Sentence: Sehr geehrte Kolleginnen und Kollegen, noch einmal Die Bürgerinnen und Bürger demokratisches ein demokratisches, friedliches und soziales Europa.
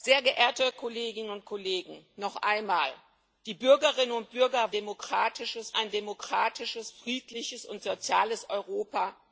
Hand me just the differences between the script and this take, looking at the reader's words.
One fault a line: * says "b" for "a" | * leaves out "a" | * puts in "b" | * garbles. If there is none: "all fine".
all fine